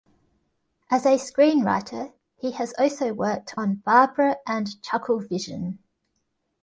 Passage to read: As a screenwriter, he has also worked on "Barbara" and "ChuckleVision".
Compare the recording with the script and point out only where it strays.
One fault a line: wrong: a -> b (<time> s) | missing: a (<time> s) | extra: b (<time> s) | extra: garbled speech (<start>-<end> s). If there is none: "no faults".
no faults